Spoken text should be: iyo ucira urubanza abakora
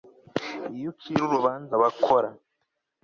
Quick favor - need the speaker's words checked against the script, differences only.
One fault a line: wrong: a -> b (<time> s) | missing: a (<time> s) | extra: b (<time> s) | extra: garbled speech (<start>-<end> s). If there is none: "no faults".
no faults